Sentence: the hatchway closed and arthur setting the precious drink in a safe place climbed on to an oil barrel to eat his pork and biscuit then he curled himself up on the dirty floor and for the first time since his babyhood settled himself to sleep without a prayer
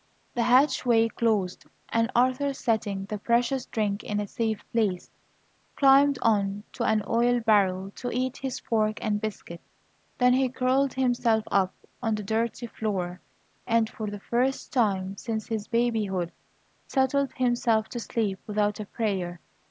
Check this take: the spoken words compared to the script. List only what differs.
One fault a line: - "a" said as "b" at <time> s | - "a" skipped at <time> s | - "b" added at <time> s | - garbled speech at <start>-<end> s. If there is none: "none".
none